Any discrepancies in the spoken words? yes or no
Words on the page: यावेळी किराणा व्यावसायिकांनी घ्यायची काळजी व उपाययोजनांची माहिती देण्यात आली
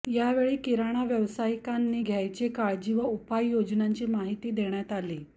no